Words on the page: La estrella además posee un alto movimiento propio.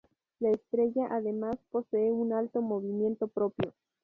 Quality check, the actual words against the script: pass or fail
pass